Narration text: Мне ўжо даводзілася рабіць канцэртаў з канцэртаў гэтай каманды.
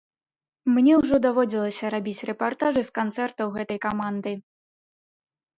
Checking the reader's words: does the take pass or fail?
fail